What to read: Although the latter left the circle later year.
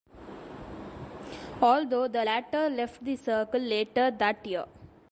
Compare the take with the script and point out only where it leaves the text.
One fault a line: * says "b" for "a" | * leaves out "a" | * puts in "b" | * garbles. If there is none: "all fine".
* puts in "that"